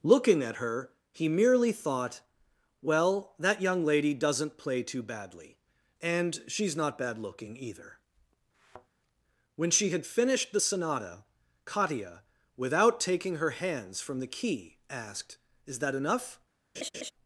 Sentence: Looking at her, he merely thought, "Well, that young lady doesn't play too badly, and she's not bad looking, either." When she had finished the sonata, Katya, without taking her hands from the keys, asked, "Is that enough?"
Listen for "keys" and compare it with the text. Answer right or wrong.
wrong